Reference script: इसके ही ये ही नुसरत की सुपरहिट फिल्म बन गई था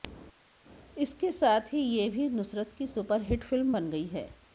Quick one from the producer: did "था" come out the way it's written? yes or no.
no